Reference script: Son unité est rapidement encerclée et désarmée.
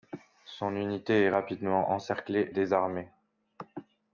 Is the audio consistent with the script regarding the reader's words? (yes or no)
no